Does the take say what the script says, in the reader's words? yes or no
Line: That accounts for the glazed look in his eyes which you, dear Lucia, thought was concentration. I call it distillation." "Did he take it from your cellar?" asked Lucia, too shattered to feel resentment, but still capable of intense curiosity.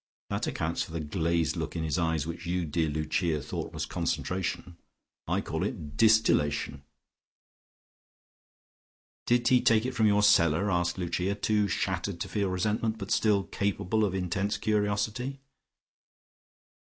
yes